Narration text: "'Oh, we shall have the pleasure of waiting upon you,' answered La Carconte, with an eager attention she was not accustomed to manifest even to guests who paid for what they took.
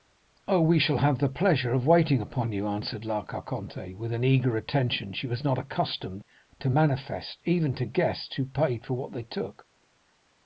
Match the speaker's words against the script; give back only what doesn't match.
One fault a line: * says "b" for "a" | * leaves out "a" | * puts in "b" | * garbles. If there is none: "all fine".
all fine